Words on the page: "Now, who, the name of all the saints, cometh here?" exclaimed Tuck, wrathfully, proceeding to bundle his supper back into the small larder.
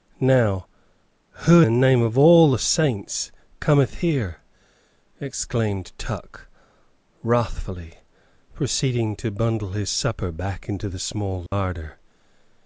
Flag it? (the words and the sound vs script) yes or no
yes